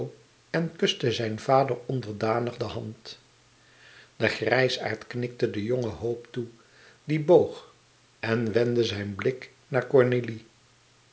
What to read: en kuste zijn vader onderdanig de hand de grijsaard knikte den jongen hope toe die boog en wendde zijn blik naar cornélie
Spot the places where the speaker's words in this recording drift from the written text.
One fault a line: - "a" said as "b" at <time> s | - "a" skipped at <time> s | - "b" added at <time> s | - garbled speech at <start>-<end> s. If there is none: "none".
none